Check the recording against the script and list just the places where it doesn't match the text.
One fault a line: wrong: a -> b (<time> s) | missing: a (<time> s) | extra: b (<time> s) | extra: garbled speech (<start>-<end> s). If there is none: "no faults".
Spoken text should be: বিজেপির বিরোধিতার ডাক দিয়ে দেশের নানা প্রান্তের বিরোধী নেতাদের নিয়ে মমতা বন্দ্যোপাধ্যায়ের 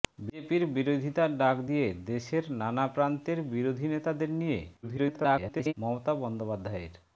extra: garbled speech (4.8-5.7 s)